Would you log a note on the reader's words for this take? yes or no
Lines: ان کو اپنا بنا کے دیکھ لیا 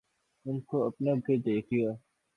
yes